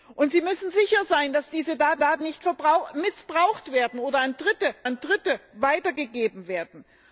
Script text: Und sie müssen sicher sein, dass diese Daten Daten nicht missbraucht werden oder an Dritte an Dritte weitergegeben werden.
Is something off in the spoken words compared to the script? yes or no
no